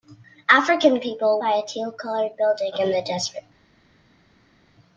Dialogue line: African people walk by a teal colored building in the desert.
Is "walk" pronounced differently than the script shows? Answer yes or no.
yes